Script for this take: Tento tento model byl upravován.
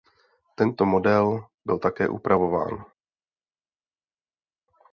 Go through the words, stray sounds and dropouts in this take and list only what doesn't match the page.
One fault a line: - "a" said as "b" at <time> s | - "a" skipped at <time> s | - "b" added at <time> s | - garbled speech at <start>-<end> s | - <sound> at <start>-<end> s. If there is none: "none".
- "tento" skipped at 0.8 s
- "také" added at 1.8 s